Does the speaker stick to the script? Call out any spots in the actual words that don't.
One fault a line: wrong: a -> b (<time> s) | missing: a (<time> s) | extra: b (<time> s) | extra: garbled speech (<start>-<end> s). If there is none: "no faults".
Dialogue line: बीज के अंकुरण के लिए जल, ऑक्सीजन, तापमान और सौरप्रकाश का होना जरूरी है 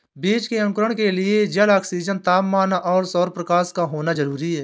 no faults